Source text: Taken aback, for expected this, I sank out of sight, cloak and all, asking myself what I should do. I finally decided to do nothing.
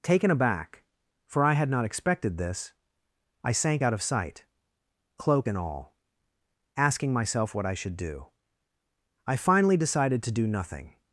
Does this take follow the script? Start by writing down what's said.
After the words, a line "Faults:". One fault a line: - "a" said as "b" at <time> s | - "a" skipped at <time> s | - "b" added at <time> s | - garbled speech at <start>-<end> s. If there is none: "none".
Taken aback, for I had not expected this, I sank out of sight, cloak and all, asking myself what I should do. I finally decided to do nothing.
Faults:
- "I had not" added at 1.4 s